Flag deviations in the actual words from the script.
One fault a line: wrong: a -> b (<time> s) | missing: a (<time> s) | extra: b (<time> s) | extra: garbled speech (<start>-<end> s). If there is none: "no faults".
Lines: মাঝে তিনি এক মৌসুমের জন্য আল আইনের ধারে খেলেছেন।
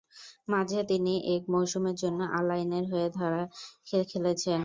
extra: হয়ে (2.9 s)